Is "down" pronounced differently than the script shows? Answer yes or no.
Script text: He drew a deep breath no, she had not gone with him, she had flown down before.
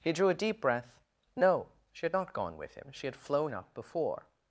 yes